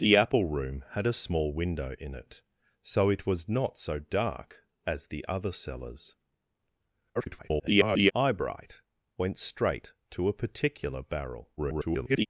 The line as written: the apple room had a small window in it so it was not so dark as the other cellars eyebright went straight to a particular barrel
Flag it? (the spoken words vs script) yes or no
yes